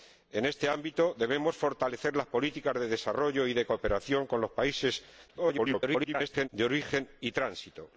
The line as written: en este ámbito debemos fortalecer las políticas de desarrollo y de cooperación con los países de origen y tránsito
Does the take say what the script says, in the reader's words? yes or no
no